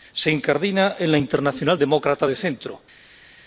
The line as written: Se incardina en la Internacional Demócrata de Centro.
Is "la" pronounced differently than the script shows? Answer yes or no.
no